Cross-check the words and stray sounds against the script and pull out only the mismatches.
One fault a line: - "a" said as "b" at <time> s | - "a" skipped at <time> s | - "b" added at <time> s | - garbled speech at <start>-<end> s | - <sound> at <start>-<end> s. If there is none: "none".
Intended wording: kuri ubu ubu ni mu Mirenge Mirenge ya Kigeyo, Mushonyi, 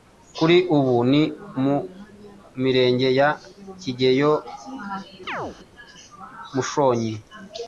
- "ubu" skipped at 0.9 s
- "Mirenge" skipped at 3.1 s
- chirp at 5.3-5.6 s